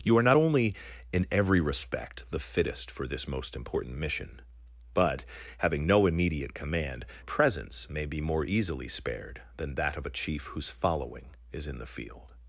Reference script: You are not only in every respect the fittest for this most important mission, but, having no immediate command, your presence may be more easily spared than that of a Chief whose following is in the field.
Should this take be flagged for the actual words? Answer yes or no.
yes